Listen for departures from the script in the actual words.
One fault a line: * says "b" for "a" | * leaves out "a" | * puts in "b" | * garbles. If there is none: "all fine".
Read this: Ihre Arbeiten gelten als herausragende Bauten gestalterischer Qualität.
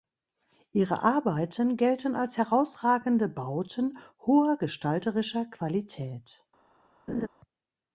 * puts in "hoher"